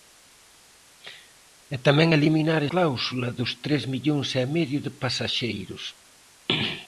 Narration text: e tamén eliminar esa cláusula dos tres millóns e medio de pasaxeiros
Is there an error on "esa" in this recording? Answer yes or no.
yes